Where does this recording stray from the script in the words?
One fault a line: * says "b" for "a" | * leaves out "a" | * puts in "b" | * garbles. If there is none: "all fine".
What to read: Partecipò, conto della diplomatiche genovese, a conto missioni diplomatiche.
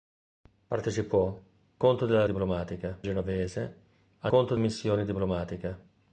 all fine